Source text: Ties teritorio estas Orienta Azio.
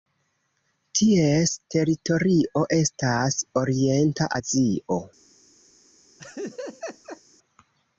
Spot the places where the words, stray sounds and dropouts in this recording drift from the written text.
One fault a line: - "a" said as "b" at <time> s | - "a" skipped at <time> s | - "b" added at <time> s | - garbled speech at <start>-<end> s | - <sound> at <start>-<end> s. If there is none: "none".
- laugh at 6.2-7.2 s